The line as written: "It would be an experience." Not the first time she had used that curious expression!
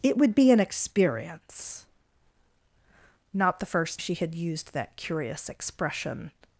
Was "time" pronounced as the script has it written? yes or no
no